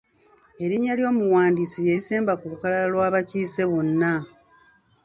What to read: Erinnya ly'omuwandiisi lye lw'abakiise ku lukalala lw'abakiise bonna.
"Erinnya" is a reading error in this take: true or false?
false